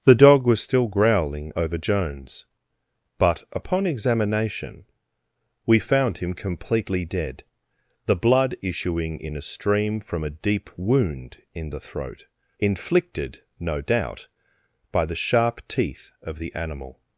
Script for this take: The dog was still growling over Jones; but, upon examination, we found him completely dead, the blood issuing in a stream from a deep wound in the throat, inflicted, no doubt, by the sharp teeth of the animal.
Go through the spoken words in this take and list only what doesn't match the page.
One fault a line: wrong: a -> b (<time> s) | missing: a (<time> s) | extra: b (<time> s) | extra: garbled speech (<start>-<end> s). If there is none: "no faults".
no faults